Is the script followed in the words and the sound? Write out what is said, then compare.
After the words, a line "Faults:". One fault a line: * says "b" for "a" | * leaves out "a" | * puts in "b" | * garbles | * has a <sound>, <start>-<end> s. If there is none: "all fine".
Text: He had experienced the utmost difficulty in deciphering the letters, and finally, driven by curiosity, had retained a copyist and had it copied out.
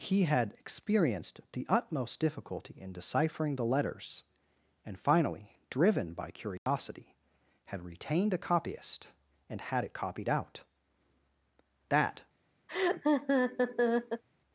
He had experienced the utmost difficulty in deciphering the letters, and finally, driven by curiosity, had retained a copyist and had it copied out. That
Faults:
* has a dropout, 6.6-6.7 s
* puts in "That"
* has a laugh, 12.7-14.2 s